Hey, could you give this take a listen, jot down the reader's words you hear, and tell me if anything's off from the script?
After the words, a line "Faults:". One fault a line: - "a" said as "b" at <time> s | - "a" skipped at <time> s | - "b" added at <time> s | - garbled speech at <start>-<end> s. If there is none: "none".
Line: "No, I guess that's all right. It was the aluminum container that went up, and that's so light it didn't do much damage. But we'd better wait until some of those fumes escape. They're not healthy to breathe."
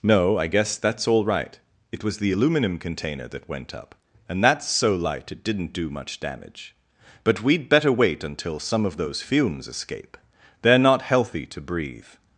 "No, I guess that's all right. It was the aluminum container that went up, and that's so light it didn't do much damage. But we'd better wait until some of those fumes escape. They're not healthy to breathe."
Faults:
none